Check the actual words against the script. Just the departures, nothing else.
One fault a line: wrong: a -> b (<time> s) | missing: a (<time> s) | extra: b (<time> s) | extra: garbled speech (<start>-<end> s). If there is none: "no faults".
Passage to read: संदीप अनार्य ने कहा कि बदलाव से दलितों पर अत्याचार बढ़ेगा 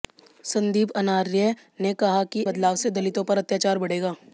no faults